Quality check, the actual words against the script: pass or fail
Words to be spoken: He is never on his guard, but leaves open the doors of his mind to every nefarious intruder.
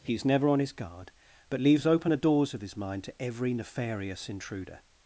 pass